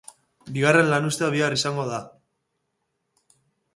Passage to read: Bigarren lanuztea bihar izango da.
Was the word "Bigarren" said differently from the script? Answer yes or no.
no